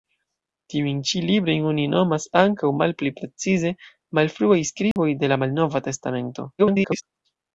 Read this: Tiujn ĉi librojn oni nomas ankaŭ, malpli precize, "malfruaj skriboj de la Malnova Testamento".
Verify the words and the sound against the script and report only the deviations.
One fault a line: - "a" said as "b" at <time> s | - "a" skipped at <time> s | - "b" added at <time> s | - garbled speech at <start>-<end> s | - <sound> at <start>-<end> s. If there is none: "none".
- dropout at 4.9-5.0 s
- garbled speech at 6.6-7.0 s